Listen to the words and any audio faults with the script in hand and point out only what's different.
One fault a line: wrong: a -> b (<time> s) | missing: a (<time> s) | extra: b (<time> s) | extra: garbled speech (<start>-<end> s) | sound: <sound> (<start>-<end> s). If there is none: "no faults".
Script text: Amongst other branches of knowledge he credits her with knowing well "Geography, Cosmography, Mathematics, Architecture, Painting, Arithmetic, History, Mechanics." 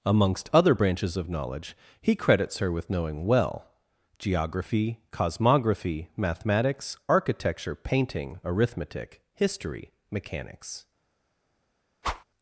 sound: whoosh (12.0-12.2 s)